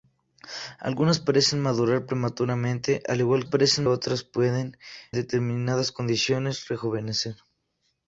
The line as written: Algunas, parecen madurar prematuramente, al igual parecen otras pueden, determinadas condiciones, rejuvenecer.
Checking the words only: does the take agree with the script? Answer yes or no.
yes